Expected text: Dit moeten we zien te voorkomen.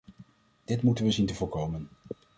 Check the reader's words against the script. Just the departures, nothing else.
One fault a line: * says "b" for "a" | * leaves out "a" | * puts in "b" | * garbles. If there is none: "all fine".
all fine